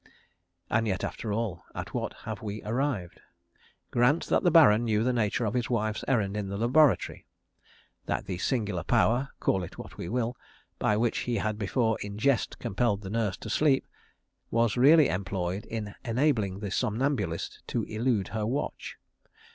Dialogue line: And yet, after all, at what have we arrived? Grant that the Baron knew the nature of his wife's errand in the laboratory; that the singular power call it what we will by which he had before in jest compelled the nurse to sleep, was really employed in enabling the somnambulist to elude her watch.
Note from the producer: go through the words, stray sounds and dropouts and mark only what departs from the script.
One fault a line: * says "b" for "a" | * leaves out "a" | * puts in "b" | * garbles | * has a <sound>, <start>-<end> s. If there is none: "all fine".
all fine